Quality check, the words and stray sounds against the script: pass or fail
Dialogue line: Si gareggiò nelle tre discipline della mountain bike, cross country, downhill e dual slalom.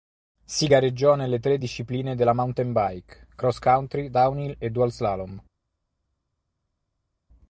pass